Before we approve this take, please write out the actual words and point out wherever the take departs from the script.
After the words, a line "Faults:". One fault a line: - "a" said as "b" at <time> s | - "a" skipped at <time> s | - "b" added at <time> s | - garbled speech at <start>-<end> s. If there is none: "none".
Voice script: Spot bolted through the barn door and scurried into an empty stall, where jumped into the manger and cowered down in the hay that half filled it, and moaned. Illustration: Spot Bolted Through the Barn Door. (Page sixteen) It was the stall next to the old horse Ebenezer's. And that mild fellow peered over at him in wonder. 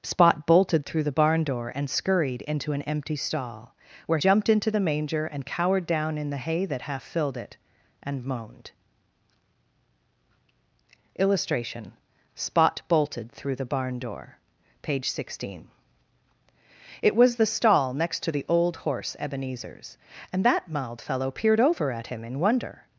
Spot bolted through the barn door and scurried into an empty stall, where jumped into the manger and cowered down in the hay that half filled it, and moaned. Illustration: Spot Bolted Through the Barn Door. (Page sixteen) It was the stall next to the old horse Ebenezer's. And that mild fellow peered over at him in wonder.
Faults:
none